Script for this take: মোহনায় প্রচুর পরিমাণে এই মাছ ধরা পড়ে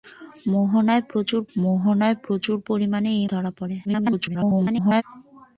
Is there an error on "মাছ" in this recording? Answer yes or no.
yes